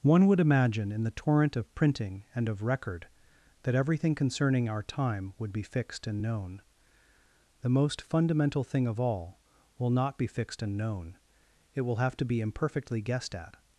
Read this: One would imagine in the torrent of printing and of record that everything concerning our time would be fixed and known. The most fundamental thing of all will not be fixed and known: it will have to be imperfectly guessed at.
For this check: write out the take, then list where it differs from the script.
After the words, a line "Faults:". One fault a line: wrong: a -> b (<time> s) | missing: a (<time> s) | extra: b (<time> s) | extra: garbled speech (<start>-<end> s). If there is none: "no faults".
One would imagine in the torrent of printing and of record that everything concerning our time would be fixed and known. The most fundamental thing of all will not be fixed and known: it will have to be imperfectly guessed at.
Faults:
no faults